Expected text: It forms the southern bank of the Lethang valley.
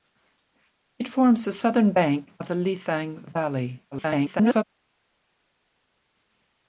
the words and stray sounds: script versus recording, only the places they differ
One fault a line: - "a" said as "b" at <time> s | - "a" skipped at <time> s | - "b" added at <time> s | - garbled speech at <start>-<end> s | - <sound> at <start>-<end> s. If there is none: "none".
- garbled speech at 3.9-4.6 s